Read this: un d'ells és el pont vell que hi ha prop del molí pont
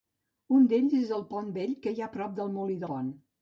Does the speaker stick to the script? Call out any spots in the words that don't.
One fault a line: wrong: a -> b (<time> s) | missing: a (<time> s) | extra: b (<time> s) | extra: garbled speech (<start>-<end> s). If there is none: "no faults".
no faults